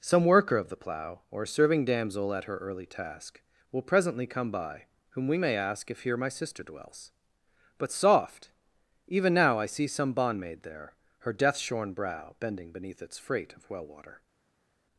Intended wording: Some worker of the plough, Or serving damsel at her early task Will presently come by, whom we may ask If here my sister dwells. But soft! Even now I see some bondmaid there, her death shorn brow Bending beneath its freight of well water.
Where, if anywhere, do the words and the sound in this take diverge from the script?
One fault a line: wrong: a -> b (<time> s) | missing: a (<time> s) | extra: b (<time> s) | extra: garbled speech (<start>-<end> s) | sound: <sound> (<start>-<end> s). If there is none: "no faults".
no faults